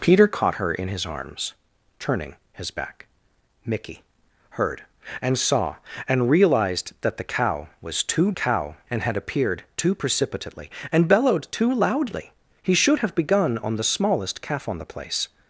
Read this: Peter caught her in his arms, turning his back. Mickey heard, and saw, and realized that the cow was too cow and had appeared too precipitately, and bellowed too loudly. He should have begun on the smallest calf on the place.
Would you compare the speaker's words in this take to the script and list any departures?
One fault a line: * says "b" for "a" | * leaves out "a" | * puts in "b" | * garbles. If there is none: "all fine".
all fine